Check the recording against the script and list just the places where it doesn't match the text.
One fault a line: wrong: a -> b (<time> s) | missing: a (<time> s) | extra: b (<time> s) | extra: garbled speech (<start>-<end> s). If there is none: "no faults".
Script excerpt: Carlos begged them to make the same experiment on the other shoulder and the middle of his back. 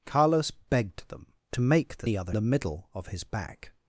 missing: same experiment on (2.1 s)
missing: shoulder and (2.3 s)